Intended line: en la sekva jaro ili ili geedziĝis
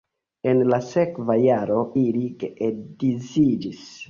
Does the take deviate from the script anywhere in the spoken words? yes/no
yes